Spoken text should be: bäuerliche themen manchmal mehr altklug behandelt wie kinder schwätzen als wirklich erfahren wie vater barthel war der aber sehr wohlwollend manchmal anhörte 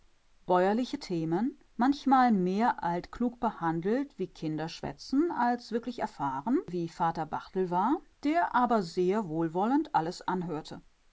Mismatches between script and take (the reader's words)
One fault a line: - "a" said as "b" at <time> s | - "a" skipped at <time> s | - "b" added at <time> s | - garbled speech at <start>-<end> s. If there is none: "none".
- "manchmal" said as "alles" at 9.9 s